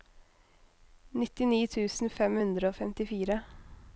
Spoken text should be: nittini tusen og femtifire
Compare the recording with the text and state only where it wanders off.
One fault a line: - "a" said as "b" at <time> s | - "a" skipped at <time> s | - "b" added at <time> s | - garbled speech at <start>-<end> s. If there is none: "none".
- "fem hundre" added at 2.2 s